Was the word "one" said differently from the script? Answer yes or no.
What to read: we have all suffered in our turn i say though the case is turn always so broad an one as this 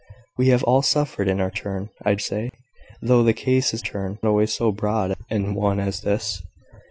no